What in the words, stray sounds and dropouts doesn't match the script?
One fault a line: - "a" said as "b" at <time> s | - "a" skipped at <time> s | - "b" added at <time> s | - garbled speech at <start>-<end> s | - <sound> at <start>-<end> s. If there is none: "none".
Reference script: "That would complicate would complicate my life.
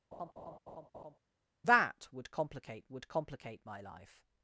- laugh at 0.1-1.2 s